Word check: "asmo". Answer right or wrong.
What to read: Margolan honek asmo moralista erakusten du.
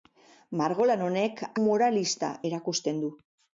wrong